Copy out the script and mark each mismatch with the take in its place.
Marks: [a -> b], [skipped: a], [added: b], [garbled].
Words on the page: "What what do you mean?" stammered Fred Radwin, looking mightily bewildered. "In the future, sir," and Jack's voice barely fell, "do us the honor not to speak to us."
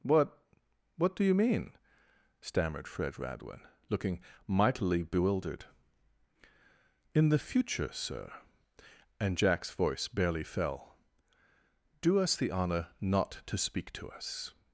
"What what do you mean?" stammered Fred Radwin, looking mightily bewildered. "In the future, sir," and Jack's voice barely fell, "do us the honor not to speak to us."